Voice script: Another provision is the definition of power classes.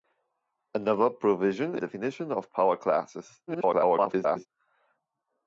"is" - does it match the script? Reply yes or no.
no